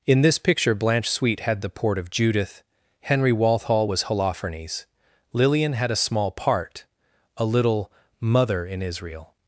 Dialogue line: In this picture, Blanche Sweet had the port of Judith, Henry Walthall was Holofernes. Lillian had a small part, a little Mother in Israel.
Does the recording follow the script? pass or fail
pass